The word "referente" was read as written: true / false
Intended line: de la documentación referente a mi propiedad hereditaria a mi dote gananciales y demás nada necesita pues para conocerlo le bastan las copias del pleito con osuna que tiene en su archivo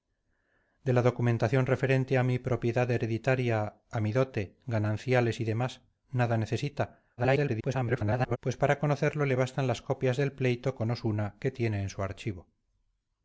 true